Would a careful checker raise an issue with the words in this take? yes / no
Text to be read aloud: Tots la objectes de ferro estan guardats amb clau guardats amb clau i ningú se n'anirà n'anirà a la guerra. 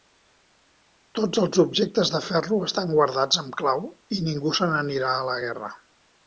yes